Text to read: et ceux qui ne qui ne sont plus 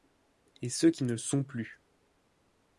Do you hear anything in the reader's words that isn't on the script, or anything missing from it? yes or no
yes